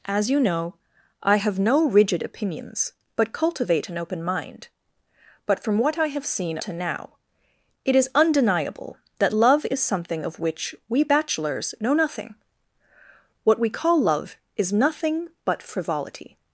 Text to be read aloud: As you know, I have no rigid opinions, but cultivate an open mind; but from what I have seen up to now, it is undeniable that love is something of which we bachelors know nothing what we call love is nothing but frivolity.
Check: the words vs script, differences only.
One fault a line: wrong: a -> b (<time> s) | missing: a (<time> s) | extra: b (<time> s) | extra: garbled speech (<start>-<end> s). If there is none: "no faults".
missing: up (6.6 s)